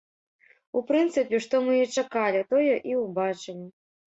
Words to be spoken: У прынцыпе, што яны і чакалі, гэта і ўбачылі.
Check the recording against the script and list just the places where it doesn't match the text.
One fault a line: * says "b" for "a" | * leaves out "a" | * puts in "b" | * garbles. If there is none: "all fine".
* says "мы" for "яны"
* says "тое" for "гэта"